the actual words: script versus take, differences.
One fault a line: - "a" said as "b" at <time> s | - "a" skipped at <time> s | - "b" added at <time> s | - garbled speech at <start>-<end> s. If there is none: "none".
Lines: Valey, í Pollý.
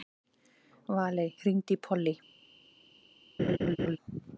- "hringdu" added at 1.4 s